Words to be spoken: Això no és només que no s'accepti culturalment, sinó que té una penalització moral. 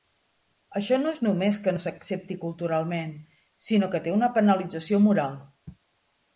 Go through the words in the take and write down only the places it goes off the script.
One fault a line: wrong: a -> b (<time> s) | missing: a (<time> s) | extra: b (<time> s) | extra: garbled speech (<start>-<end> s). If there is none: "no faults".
no faults